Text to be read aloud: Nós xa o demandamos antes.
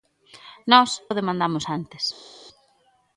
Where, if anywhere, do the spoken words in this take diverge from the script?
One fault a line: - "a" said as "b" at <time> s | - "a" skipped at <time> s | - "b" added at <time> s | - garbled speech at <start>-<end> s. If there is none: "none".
- "xa" skipped at 0.9 s